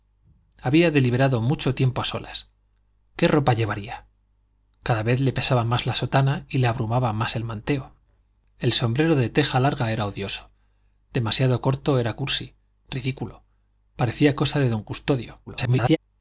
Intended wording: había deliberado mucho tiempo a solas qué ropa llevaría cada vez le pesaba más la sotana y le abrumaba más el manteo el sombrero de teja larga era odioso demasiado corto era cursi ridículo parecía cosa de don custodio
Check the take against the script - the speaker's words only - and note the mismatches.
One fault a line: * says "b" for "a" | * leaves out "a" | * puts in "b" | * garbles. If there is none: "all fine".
* garbles